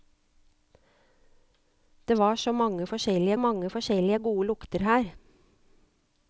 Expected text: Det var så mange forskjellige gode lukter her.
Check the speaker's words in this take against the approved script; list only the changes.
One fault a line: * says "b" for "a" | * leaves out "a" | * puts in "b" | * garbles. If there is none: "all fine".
* puts in "mange forskjellige"